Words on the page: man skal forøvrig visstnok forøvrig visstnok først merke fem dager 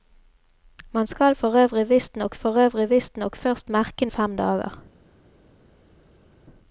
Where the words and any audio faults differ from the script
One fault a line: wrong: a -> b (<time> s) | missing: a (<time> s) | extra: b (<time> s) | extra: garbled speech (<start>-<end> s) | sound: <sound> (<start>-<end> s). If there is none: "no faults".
no faults